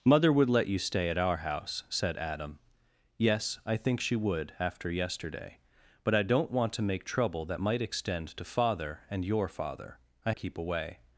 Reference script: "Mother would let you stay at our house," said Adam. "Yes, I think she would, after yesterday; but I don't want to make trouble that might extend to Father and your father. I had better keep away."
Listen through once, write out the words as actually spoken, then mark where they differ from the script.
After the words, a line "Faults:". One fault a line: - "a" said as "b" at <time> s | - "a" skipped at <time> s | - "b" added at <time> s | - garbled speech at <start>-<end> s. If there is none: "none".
"Mother would let you stay at our house," said Adam. "Yes, I think she would, after yesterday; but I don't want to make trouble that might extend to Father and your father. I keep away."
Faults:
- "had better" skipped at 10.3 s